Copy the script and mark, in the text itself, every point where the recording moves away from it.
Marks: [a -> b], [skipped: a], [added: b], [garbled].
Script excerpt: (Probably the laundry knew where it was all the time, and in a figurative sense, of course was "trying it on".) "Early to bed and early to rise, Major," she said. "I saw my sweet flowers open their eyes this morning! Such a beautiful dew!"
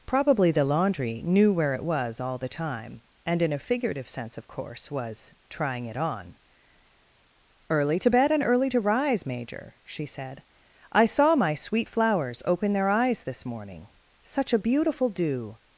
(Probably the laundry knew where it was all the time, and in a figurative sense, of course was "trying it on".) "Early to bed and early to rise, Major," she said. "I saw my sweet flowers open their eyes this morning! Such a beautiful dew!"